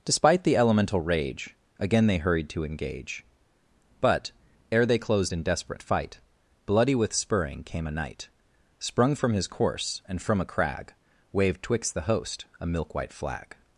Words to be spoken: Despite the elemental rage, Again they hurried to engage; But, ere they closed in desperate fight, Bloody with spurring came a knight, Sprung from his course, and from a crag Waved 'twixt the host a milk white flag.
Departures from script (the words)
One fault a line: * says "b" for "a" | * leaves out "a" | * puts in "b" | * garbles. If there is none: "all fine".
all fine